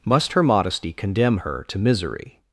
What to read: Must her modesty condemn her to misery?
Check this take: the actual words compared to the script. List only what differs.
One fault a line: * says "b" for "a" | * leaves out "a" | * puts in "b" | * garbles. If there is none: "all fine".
all fine